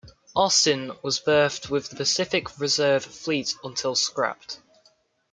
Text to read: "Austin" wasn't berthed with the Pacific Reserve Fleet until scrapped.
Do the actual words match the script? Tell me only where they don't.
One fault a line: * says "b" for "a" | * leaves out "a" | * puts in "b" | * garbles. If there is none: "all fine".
* says "was" for "wasn't"